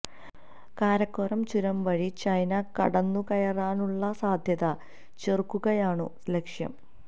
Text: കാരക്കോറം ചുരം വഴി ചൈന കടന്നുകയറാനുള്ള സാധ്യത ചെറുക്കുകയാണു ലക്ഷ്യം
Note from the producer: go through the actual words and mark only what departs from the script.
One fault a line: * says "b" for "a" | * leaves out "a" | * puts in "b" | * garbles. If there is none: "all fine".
all fine